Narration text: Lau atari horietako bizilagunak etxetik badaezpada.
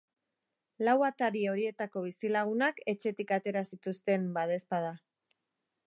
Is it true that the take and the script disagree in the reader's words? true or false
true